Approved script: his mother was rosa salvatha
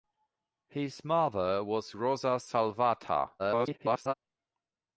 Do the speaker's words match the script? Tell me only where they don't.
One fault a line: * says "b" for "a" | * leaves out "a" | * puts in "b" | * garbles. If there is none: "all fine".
* garbles